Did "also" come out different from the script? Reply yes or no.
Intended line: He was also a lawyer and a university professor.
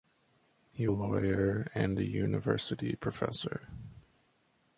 yes